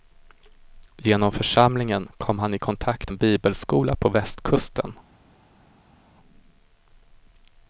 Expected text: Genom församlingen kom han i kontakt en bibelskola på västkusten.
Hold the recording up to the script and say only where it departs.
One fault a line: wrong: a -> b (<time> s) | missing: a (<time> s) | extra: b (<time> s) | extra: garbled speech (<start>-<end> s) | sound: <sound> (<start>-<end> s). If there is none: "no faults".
no faults